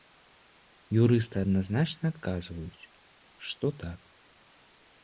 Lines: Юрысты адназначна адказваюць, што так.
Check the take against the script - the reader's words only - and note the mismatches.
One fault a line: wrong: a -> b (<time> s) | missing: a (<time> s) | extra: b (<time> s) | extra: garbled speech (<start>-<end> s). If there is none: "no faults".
no faults